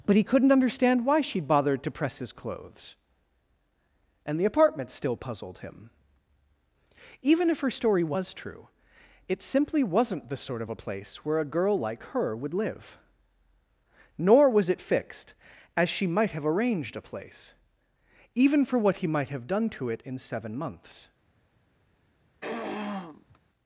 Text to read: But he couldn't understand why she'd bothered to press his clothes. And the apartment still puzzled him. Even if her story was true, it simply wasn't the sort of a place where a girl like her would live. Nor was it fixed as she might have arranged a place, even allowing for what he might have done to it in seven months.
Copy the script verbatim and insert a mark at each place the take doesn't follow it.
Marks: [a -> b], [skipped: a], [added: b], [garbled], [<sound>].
But he couldn't understand why she'd bothered to press his clothes. And the apartment still puzzled him. Even if her story was true, it simply wasn't the sort of a place where a girl like her would live. Nor was it fixed as she might have arranged a place, even [skipped: allowing] for what he might have done to it in seven months. [throat clearing]